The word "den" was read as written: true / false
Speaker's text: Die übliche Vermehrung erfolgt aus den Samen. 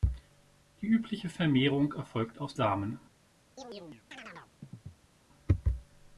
false